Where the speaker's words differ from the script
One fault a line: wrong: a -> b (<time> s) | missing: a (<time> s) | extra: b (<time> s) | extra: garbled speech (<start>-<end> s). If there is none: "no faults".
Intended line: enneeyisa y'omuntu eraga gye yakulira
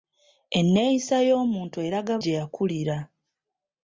no faults